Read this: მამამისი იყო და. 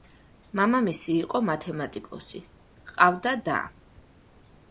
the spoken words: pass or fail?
fail